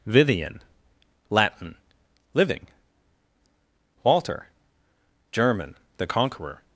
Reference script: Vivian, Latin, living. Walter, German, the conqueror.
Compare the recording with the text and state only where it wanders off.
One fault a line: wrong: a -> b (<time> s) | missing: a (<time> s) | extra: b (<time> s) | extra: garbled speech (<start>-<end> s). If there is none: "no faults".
no faults